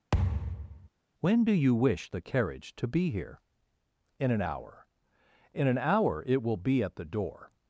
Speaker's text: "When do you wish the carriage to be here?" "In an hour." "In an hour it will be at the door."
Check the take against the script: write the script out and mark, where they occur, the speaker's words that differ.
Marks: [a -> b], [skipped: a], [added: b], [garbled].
"When do you wish the carriage to be here?" "In an hour." "In an hour it will be at the door."